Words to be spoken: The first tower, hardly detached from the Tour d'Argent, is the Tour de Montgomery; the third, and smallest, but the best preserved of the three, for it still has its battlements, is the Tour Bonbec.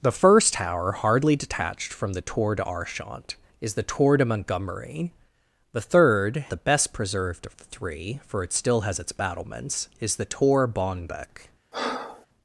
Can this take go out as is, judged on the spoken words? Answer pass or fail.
fail